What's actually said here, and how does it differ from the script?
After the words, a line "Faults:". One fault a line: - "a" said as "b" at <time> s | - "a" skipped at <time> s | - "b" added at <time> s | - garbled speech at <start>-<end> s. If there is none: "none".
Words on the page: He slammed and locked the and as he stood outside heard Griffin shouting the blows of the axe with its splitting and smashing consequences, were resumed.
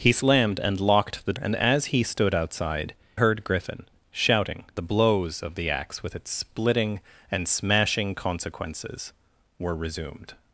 He slammed and locked the and as he stood outside heard Griffin shouting the blows of the axe with its splitting and smashing consequences, were resumed.
Faults:
none